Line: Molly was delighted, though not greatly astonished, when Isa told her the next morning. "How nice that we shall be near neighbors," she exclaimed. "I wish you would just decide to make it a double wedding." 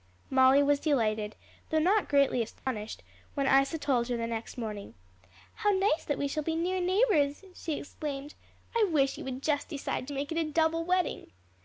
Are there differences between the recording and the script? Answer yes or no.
no